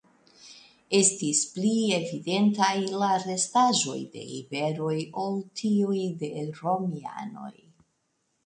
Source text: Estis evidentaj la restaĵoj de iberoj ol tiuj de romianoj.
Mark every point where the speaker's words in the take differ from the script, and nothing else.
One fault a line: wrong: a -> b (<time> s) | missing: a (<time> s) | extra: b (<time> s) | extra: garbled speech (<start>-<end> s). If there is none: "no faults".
extra: pli (1.6 s)